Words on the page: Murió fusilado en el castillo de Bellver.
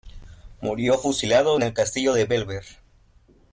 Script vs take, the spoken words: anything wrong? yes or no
no